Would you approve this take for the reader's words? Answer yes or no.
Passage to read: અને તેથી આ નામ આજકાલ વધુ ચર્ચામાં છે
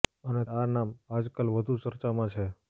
no